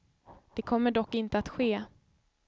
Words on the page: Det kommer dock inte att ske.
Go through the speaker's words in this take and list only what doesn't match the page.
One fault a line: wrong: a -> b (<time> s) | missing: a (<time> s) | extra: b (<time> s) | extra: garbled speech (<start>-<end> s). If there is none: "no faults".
no faults